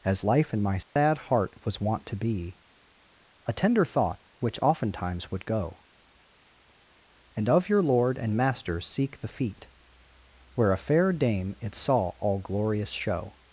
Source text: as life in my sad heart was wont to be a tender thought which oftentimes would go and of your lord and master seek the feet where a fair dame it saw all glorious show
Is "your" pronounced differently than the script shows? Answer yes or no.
no